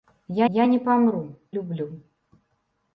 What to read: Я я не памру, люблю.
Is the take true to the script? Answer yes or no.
yes